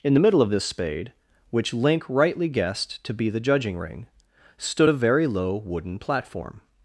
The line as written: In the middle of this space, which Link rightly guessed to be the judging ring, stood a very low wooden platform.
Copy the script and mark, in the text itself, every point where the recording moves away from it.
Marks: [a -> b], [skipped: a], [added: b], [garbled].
In the middle of this [space, -> spade] which Link rightly guessed to be the judging ring, stood a very low wooden platform.